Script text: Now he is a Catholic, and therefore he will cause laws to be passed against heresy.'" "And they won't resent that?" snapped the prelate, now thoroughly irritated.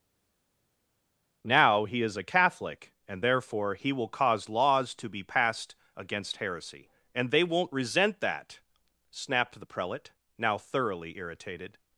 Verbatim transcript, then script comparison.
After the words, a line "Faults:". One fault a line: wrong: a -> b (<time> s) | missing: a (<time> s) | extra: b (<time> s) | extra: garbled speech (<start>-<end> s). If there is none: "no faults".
Now he is a Catholic, and therefore he will cause laws to be passed against heresy.'" "And they won't resent that?" snapped the prelate, now thoroughly irritated.
Faults:
no faults